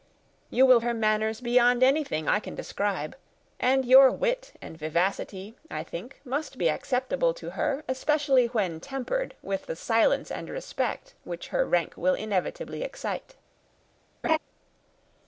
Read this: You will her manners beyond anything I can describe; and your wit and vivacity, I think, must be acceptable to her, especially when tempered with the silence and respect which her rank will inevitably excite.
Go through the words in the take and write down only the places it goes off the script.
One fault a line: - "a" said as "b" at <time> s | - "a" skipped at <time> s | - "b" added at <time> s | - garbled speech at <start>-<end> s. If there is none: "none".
none